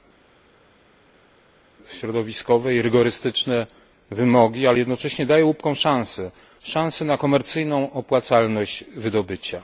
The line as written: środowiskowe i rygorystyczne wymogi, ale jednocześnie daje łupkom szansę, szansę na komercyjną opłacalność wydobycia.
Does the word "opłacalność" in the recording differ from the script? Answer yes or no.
no